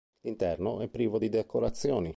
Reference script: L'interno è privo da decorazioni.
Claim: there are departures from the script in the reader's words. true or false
true